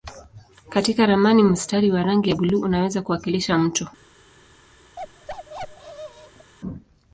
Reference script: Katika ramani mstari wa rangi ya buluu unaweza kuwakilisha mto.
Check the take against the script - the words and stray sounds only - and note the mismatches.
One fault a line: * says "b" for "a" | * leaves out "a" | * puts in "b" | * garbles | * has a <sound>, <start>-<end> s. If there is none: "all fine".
* has a bark, 5.0-6.5 s